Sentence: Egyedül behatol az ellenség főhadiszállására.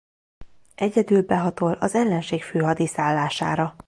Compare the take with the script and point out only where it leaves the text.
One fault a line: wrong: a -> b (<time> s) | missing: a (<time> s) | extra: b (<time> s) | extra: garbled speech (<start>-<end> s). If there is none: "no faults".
no faults